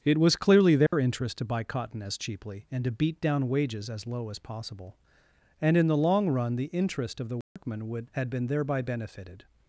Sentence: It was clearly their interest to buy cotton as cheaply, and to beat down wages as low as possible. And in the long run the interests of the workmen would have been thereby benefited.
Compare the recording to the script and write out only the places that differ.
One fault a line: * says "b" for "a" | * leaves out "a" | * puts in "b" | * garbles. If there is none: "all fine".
* says "interest" for "interests"
* says "had" for "have"